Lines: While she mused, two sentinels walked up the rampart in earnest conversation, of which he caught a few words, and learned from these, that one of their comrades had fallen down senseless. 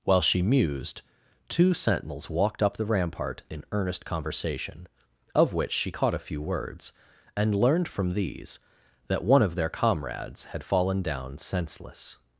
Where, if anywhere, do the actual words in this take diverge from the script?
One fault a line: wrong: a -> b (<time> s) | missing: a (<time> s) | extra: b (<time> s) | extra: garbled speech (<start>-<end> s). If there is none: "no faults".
wrong: he -> she (5.7 s)